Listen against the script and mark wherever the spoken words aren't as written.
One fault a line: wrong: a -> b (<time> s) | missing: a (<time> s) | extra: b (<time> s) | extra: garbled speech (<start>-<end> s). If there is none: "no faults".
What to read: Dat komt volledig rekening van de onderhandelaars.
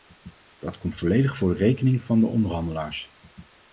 extra: voor (1.4 s)